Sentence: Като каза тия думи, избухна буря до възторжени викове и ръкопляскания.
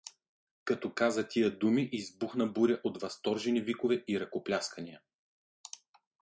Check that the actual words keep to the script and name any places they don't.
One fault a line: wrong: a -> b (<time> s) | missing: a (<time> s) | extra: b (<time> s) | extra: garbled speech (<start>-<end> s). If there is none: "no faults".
wrong: до -> от (2.8 s)